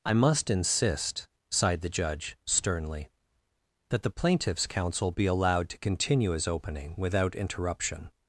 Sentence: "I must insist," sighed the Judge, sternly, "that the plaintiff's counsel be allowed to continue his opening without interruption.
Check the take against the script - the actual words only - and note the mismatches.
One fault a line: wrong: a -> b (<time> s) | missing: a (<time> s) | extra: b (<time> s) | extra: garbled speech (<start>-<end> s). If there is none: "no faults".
no faults